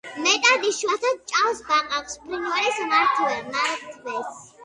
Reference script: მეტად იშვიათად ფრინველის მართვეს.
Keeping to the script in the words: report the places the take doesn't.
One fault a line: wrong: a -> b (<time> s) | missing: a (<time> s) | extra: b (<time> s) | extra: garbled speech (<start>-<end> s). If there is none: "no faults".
extra: ჭამს ბაყაყს (1.3 s)